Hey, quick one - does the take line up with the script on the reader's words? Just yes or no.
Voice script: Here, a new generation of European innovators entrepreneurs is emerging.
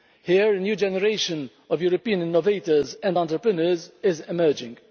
no